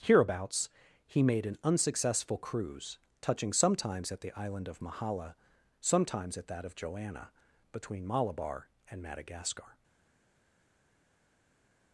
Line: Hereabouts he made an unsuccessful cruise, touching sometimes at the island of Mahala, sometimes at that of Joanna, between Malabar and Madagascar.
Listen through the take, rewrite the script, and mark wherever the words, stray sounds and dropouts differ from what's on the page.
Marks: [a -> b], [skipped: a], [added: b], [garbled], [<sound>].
Hereabouts he made an unsuccessful cruise, touching sometimes at the island of Mahala, sometimes at that of Joanna, between Malabar and Madagascar.